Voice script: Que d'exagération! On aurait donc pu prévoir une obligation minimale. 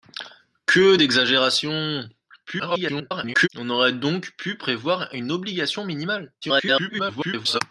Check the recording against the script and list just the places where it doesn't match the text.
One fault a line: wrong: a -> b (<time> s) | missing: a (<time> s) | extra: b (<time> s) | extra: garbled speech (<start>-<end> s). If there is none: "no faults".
extra: garbled speech (2.5-3.5 s)
extra: garbled speech (6.4-7.6 s)